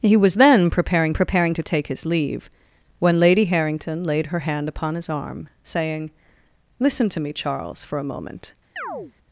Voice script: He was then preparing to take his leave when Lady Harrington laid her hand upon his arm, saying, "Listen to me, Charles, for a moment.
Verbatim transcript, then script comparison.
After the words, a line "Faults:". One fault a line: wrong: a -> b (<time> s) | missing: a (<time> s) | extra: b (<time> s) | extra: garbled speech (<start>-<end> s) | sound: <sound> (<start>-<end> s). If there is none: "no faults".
He was then preparing preparing to take his leave when Lady Harrington laid her hand upon his arm, saying, "Listen to me, Charles, for a moment.
Faults:
extra: preparing (1.1 s)
sound: chirp (8.8-9.1 s)